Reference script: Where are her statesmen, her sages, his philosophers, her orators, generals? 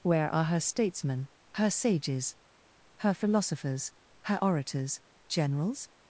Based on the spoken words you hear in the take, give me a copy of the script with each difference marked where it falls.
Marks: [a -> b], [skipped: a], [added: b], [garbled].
Where are her statesmen, her sages, [his -> her] philosophers, her orators, generals?